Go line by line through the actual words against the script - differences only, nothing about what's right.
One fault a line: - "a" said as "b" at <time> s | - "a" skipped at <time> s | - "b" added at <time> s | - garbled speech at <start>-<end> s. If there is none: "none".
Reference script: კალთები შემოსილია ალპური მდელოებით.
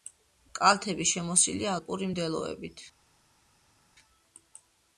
none